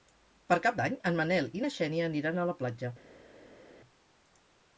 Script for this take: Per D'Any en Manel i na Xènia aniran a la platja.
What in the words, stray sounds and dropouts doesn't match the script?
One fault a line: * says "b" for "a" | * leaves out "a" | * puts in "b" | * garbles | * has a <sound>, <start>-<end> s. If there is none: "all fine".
* puts in "Cap"